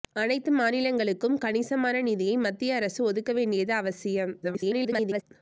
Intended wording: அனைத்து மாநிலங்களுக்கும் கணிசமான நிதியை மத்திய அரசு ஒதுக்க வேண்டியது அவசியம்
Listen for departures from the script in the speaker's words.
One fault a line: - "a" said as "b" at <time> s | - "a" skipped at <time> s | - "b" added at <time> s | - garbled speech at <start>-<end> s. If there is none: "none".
- garbled speech at 4.4-5.2 s